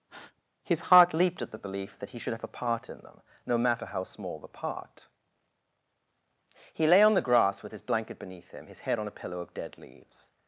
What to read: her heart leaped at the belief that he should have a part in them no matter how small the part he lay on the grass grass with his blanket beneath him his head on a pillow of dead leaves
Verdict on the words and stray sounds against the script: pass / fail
fail